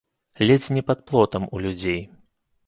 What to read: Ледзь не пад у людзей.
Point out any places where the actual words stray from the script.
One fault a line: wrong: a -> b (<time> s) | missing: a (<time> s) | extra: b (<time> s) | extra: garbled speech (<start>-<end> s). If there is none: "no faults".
extra: плотам (1.0 s)